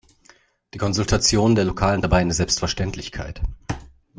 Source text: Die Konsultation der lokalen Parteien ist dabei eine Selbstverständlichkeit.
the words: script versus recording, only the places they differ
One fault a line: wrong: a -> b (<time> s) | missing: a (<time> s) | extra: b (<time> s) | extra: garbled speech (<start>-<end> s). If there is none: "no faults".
missing: Parteien ist (2.0 s)